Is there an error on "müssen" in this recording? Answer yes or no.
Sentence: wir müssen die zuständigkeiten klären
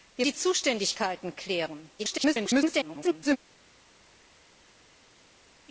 yes